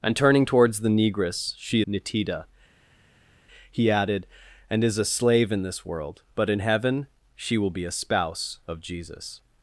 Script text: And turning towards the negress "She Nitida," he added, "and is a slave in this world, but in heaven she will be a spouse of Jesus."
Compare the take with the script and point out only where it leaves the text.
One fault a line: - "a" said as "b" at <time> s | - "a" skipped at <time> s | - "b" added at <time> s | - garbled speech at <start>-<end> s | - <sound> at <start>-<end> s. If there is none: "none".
none